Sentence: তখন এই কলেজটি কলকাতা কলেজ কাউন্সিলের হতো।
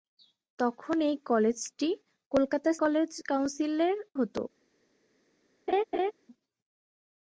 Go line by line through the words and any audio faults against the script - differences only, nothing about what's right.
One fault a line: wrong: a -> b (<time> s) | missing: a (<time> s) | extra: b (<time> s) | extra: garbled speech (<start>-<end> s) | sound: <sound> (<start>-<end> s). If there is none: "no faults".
sound: laugh (5.7-6.1 s)